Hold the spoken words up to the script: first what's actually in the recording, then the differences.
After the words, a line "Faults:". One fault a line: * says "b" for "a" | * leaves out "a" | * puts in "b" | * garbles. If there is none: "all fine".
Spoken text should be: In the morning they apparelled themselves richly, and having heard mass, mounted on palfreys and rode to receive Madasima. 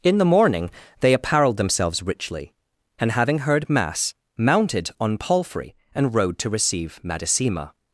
In the morning they apparelled themselves richly, and having heard mass, mounted on palfrey and rode to receive Madasima.
Faults:
* says "palfrey" for "palfreys"